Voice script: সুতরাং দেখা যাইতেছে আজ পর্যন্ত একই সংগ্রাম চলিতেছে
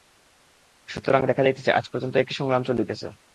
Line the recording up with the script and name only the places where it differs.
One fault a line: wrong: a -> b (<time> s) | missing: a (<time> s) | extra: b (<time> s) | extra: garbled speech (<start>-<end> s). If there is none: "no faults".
no faults